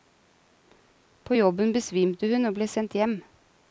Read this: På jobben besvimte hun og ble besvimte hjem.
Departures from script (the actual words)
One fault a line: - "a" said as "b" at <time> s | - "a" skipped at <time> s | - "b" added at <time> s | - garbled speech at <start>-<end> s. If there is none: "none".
- "besvimte" said as "sendt" at 2.7 s